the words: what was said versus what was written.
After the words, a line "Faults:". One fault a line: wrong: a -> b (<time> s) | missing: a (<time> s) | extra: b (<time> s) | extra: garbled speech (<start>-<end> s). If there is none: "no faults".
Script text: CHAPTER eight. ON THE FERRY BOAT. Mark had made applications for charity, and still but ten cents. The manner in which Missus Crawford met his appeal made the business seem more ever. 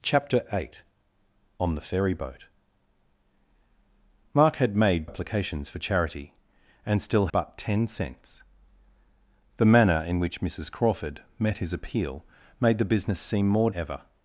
CHAPTER eight. ON THE FERRY BOAT. Mark had made applications for charity, and still but ten cents. The manner in which Missus Crawford met his appeal made the business seem more ever.
Faults:
no faults